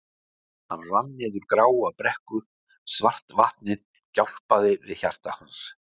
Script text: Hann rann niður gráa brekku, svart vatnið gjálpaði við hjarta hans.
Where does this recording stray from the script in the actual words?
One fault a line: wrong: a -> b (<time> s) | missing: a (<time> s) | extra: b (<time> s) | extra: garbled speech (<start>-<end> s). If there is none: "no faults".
no faults